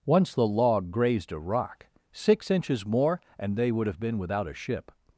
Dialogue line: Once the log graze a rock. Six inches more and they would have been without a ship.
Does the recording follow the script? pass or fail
fail